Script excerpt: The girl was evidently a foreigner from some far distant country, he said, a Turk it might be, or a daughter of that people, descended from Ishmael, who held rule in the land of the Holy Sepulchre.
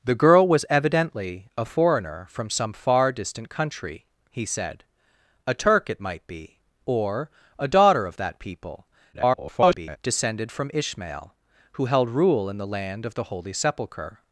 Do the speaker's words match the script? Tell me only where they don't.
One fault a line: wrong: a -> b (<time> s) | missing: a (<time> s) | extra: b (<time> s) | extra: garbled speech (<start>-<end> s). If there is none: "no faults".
extra: garbled speech (9.1-10.0 s)